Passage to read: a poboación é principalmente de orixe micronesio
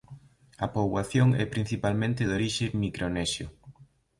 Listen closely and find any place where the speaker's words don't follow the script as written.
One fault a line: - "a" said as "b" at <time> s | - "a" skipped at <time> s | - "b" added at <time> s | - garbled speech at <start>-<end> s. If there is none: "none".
none